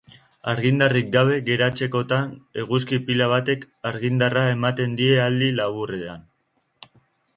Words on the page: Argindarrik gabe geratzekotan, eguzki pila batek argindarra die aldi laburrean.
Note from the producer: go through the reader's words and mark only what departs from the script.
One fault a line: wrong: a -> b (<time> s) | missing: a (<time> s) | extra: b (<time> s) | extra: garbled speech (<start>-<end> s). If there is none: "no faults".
extra: ematen (4.5 s)